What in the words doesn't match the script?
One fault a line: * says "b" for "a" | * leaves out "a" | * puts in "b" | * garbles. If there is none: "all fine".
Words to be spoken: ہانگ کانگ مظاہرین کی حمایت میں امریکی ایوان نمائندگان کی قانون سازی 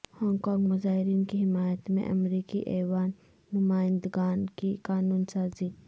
all fine